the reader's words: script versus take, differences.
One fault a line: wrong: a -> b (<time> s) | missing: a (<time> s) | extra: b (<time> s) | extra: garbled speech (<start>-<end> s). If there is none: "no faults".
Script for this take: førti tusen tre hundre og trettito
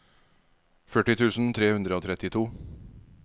no faults